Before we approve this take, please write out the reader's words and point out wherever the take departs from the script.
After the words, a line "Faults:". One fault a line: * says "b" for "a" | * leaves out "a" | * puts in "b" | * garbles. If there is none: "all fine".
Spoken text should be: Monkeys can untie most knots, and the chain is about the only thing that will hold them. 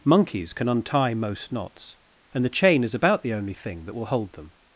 Monkeys can untie most knots, and the chain is about the only thing that will hold them.
Faults:
all fine